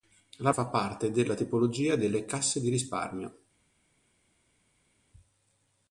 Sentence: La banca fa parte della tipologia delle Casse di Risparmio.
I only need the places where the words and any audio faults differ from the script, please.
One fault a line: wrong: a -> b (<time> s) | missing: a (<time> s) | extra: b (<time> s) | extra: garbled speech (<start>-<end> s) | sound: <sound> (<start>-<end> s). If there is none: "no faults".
missing: banca (0.5 s)